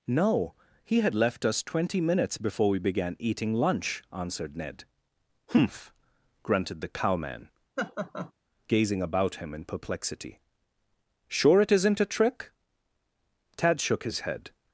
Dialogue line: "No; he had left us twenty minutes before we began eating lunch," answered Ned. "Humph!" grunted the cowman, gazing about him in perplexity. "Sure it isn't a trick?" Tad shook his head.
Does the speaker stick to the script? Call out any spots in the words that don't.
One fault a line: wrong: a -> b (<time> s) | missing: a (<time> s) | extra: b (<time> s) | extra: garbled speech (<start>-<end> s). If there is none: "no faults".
no faults